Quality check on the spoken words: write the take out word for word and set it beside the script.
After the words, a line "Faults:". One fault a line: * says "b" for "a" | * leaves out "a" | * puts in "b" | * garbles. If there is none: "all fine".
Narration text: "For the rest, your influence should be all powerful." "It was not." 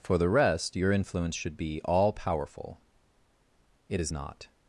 "For the rest, your influence should be all powerful." "It is not."
Faults:
* says "is" for "was"